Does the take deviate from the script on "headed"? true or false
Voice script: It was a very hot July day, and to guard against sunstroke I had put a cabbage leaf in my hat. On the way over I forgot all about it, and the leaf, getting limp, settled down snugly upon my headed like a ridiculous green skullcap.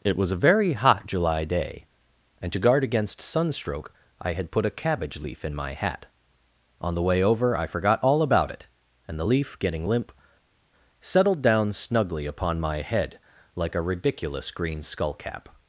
true